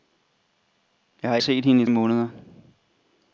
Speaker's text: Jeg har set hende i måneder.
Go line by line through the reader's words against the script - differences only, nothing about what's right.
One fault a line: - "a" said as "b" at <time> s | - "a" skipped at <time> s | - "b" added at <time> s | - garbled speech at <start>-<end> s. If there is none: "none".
none